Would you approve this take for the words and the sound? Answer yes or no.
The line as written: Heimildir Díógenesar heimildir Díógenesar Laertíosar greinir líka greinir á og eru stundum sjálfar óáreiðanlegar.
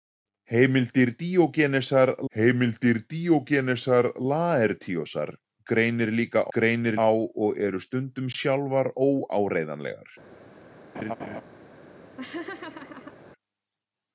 no